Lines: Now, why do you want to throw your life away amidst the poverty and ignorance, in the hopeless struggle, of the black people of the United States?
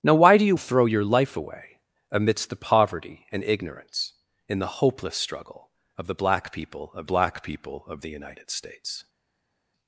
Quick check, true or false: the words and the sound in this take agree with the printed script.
false